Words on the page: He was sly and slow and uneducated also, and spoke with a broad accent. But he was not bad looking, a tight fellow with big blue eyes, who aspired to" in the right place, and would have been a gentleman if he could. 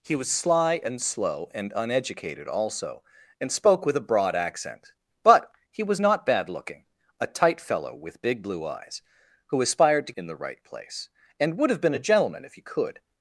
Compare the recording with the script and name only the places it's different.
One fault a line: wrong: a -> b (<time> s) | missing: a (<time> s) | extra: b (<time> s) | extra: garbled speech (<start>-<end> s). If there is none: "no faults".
no faults